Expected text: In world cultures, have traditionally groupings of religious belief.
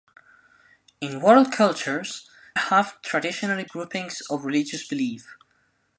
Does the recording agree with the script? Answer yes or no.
yes